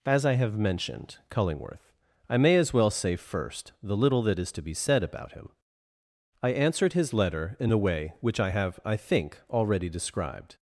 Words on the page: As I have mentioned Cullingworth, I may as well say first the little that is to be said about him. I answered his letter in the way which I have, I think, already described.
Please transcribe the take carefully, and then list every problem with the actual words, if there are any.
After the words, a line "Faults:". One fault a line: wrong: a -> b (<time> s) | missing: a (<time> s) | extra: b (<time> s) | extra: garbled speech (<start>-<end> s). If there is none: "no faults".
As I have mentioned Cullingworth, I may as well say first the little that is to be said about him. I answered his letter in the way which I have, I think, already described.
Faults:
no faults